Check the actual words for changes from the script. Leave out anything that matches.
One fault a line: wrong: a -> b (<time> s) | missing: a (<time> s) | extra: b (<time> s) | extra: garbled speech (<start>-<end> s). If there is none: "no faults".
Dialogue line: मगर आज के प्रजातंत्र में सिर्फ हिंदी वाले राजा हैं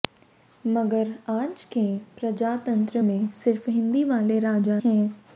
no faults